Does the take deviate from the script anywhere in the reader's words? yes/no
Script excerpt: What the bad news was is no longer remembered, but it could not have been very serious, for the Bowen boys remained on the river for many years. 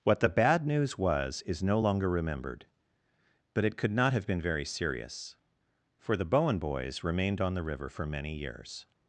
no